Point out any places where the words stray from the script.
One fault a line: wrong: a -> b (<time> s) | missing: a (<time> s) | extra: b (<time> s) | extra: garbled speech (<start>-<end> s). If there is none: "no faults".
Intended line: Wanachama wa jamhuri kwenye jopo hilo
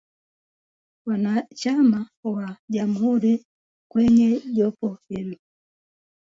no faults